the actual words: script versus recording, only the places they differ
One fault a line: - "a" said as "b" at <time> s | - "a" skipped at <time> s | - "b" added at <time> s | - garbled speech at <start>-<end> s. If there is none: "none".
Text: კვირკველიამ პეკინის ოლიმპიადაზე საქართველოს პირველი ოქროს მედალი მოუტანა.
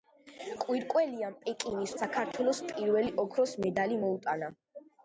- "ოლიმპიადაზე" skipped at 1.9 s